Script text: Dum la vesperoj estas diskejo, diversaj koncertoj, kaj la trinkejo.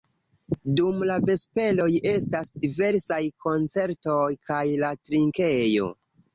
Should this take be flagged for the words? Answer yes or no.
yes